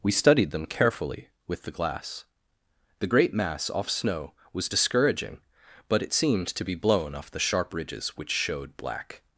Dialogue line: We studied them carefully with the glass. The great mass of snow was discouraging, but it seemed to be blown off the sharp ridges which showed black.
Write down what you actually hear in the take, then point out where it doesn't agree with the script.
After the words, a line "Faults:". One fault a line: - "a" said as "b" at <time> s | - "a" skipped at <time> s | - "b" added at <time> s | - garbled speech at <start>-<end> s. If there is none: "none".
We studied them carefully with the glass. The great mass off snow was discouraging, but it seemed to be blown off the sharp ridges which showed black.
Faults:
- "of" said as "off" at 3.7 s